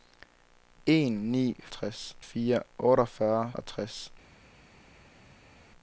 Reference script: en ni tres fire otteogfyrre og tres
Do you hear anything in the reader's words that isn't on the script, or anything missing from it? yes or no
no